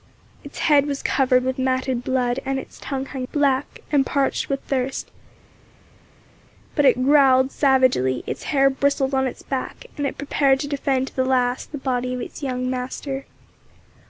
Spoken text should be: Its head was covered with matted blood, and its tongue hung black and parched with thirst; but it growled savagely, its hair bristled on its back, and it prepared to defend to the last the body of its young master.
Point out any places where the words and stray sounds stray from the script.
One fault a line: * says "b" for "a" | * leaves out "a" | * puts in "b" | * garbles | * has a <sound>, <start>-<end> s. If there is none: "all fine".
all fine